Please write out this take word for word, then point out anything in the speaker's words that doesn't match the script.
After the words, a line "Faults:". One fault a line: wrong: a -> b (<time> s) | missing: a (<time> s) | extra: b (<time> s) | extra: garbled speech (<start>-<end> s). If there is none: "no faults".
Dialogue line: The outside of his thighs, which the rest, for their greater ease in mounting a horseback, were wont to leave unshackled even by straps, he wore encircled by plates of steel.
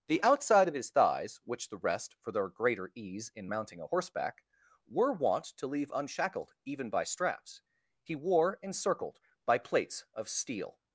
The outside of his thighs, which the rest, for their greater ease in mounting a horseback, were wont to leave unshackled even by straps, he wore encircled by plates of steel.
Faults:
no faults